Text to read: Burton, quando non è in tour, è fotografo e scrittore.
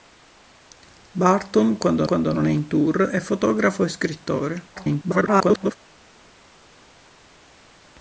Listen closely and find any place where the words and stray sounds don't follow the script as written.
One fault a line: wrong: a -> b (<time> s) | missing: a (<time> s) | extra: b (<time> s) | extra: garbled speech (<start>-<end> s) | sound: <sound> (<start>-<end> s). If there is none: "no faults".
extra: quando (2.0 s)
extra: garbled speech (4.7-5.8 s)